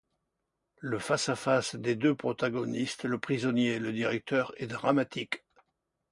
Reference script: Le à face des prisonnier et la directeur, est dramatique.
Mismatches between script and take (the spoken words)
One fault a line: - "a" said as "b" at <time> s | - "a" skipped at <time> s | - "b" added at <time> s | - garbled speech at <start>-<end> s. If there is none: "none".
- "face" added at 1.0 s
- "deux protagonistes le" added at 1.9 s
- "la" said as "le" at 3.8 s